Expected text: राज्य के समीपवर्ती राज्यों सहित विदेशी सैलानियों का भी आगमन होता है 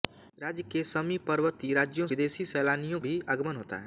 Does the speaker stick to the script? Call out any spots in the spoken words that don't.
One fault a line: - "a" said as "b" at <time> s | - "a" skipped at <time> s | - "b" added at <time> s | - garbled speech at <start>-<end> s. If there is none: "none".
- "सहित" skipped at 2.1 s
- "का" skipped at 3.0 s